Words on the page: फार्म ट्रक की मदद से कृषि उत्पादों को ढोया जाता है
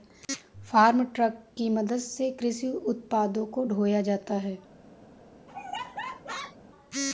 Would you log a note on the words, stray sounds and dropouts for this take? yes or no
yes